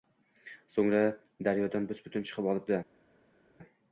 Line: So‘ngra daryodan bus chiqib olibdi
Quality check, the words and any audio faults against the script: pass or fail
fail